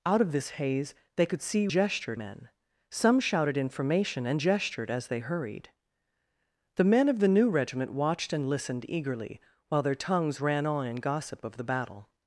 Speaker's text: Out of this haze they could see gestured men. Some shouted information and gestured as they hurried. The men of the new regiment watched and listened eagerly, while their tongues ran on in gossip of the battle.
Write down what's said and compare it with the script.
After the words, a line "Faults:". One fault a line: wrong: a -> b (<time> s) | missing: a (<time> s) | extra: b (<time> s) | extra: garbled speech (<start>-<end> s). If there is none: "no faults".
Out of this haze they could see gestured men. Some shouted information and gestured as they hurried. The men of the new regiment watched and listened eagerly, while their tongues ran on in gossip of the battle.
Faults:
no faults